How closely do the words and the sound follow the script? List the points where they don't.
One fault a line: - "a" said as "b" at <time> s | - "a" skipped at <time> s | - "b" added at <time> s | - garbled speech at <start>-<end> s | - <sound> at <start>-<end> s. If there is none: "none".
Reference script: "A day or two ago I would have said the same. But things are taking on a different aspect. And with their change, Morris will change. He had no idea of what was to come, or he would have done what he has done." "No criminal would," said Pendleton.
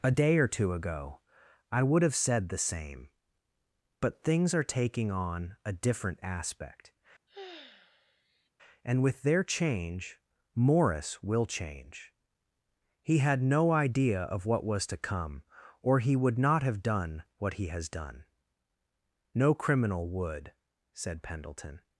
- sigh at 7.3-8.5 s
- "not" added at 16.4 s